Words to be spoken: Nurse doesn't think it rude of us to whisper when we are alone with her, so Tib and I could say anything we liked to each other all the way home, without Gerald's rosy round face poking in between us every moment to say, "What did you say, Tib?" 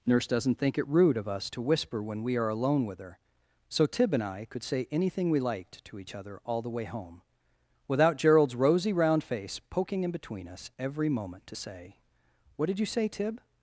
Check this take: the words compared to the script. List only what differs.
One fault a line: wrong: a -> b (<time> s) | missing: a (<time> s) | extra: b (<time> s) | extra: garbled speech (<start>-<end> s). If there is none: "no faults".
no faults